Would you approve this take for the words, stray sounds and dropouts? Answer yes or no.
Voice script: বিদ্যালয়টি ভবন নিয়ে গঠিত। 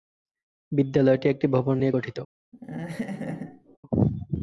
no